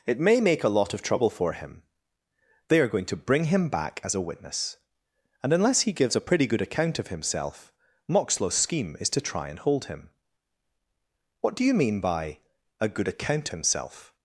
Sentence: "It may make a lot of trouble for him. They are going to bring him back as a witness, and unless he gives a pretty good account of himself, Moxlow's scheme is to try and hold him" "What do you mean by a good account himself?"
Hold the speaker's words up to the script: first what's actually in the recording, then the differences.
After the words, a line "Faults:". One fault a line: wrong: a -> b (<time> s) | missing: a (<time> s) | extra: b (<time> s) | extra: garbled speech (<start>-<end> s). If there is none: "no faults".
"It may make a lot of trouble for him. They are going to bring him back as a witness, and unless he gives a pretty good account of himself, Moxlow's scheme is to try and hold him" "What do you mean by a good account himself?"
Faults:
no faults